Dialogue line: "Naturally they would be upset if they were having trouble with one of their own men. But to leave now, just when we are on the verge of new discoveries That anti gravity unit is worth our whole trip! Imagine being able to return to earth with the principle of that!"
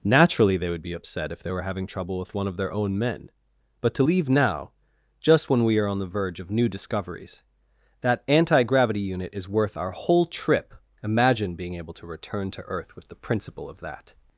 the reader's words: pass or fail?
pass